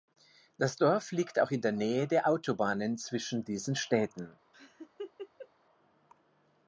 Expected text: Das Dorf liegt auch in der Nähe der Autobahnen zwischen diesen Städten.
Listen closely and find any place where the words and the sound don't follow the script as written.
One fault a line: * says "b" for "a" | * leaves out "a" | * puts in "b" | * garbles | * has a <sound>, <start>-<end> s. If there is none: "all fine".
* has a laugh, 4.5-5.5 s